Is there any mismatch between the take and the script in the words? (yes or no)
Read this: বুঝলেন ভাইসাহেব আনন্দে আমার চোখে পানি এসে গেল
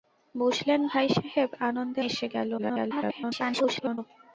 yes